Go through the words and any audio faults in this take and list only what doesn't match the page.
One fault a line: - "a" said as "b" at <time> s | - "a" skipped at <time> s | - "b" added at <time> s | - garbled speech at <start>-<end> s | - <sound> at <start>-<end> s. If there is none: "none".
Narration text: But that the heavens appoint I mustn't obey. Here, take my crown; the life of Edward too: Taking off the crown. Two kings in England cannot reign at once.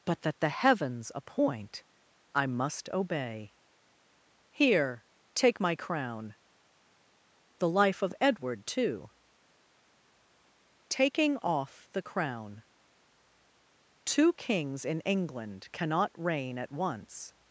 - "mustn't" said as "must" at 2.5 s